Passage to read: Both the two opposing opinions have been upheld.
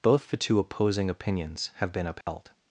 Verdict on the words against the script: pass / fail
pass